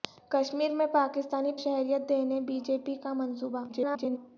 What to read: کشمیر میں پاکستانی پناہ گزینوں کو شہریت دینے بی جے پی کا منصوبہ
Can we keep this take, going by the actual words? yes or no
no